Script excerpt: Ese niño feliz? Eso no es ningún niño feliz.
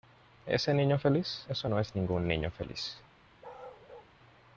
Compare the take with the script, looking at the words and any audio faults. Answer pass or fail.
fail